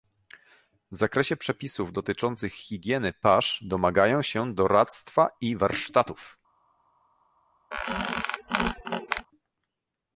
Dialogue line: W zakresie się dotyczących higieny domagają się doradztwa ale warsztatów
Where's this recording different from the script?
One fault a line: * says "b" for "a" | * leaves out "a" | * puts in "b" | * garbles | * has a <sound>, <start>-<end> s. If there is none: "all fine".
* says "przepisów" for "się"
* puts in "pasz"
* says "i" for "ale"
* has a squeak, 7.7-9.3 s